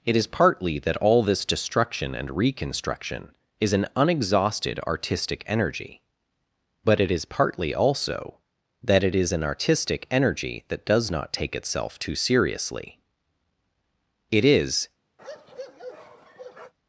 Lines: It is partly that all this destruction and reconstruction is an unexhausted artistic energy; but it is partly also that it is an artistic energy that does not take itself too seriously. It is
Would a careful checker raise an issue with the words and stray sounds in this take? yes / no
yes